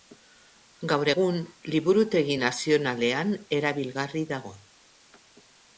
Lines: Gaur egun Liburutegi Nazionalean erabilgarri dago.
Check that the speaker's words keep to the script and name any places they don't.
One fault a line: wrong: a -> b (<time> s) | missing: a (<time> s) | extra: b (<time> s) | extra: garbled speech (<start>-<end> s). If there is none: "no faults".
no faults